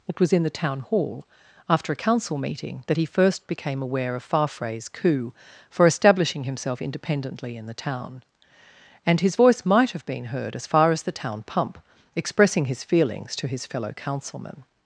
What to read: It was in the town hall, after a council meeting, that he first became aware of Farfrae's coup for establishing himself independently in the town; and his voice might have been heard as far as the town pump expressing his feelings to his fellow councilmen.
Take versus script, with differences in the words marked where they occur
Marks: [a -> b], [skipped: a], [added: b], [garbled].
It was in the town hall, after a council meeting, that he first became aware of Farfrae's coup for establishing himself independently in the town; and his voice might have been heard as far as the town pump expressing his feelings to his fellow councilmen.